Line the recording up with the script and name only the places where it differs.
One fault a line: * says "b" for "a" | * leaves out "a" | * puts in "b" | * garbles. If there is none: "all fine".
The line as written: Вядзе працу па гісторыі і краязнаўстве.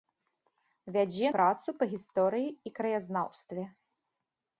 all fine